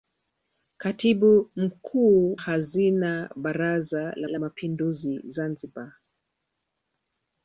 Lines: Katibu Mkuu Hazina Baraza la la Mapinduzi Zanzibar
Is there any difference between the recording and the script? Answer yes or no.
no